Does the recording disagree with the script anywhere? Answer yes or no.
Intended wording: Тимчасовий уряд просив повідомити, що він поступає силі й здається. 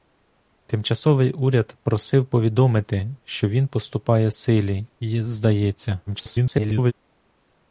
yes